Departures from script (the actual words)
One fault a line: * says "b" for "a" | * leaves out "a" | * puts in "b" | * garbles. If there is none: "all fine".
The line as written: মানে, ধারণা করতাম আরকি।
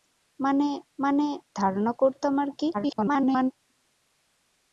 * puts in "মানে"
* garbles